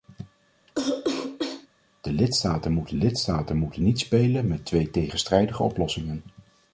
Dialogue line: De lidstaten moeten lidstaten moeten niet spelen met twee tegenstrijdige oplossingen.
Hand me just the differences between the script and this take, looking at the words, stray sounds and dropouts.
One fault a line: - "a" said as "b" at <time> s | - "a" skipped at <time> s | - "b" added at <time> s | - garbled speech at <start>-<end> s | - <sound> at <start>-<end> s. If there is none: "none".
- cough at 0.7-1.7 s